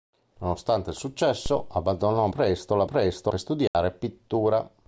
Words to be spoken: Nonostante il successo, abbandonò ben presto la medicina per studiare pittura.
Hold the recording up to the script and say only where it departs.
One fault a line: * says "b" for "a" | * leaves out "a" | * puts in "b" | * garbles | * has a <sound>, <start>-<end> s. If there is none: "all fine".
* leaves out "ben"
* says "presto" for "medicina"
* has a dropout, 3.7-3.7 s